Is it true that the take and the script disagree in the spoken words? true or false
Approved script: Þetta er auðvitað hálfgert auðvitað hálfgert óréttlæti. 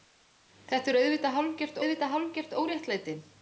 false